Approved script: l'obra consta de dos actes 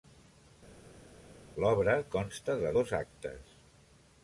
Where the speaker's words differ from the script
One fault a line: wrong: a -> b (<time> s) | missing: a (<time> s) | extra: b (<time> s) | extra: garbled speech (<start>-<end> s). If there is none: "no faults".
no faults